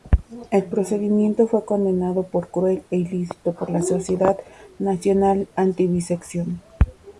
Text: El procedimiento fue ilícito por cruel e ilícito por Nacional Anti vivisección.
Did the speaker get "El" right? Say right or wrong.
right